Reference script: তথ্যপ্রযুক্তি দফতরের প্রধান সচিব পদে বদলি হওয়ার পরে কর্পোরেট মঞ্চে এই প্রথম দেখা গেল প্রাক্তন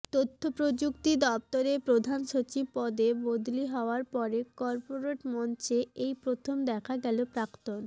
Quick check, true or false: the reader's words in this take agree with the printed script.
true